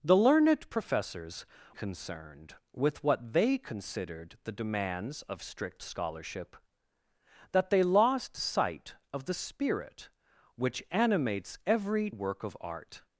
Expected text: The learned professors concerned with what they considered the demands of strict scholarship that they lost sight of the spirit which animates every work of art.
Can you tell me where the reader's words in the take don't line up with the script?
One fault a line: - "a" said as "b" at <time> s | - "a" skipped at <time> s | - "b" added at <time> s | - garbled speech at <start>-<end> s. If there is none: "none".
none